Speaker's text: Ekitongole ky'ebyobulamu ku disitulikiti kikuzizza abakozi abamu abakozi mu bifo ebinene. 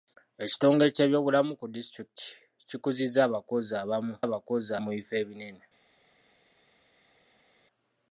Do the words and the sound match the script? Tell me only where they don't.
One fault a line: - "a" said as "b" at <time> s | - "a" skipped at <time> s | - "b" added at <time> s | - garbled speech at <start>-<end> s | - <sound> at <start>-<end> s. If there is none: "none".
none